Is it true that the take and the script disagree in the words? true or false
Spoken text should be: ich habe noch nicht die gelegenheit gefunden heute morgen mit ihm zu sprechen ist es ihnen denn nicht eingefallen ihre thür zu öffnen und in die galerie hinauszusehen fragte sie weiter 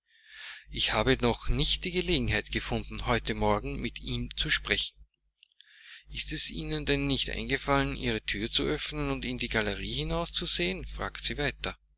false